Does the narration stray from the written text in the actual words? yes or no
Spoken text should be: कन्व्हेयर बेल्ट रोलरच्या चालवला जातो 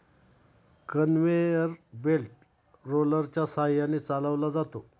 yes